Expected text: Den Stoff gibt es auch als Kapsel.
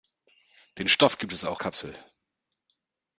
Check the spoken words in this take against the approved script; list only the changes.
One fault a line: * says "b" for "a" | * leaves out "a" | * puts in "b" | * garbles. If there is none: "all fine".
* leaves out "als"